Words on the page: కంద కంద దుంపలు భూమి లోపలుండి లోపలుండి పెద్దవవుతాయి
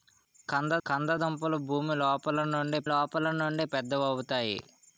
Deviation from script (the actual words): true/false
false